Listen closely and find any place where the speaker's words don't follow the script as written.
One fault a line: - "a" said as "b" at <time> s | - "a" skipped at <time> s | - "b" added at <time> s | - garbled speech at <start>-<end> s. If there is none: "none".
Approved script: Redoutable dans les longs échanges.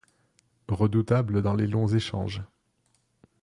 none